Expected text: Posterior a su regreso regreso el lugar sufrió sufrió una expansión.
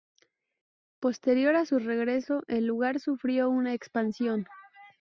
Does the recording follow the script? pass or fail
fail